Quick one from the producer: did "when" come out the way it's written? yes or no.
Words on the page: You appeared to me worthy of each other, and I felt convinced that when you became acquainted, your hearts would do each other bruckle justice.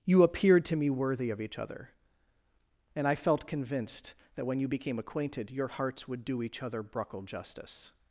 yes